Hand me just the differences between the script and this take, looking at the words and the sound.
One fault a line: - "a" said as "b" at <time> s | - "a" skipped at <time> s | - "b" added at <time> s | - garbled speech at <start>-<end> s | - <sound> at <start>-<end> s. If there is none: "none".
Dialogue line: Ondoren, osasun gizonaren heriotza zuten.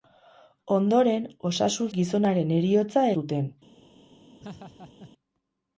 - laugh at 4.4-5.1 s